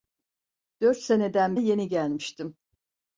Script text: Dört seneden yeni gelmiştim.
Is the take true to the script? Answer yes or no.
yes